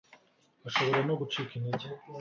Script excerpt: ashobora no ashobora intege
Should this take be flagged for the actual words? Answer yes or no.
yes